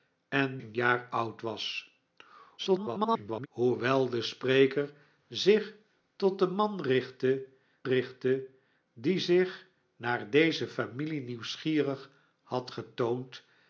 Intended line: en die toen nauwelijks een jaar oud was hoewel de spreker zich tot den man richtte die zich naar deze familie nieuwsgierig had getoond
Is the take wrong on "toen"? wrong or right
wrong